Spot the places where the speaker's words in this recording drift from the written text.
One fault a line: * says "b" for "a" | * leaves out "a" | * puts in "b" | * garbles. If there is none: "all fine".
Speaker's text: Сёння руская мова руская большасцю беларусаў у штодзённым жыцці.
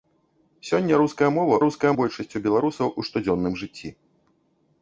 all fine